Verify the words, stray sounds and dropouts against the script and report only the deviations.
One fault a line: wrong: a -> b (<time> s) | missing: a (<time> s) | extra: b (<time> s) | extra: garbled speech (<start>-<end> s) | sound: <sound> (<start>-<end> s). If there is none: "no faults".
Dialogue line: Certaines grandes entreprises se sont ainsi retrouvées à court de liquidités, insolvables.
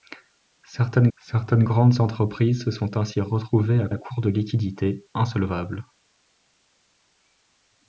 extra: certaines (1.2 s)
extra: à (3.9 s)